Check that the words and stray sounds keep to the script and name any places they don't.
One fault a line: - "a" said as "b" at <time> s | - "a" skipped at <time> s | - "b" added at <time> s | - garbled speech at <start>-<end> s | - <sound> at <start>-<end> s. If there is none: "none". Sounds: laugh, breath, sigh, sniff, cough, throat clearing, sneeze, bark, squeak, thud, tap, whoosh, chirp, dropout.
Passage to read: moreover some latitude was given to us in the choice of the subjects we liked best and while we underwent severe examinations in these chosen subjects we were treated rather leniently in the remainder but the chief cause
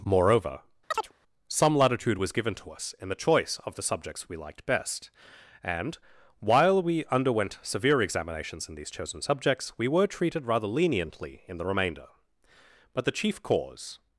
- chirp at 0.9-1.1 s